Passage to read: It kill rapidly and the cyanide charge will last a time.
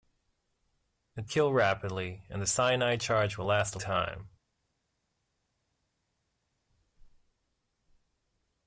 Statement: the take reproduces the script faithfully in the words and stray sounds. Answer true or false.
true